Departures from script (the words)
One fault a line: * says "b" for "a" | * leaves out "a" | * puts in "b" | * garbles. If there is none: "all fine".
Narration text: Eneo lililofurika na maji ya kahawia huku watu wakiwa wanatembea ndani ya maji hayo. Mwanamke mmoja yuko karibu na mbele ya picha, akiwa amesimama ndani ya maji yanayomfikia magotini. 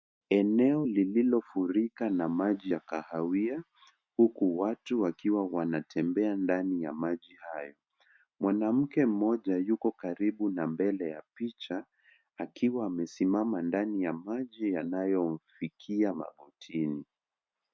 all fine